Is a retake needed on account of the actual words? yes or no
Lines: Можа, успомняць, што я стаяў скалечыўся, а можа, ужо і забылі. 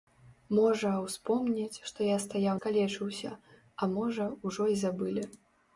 no